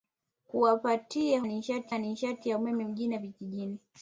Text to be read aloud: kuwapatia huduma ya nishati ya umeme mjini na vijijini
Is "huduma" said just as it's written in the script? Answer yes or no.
no